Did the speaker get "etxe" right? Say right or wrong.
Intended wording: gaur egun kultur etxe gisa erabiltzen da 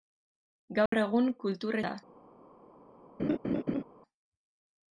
wrong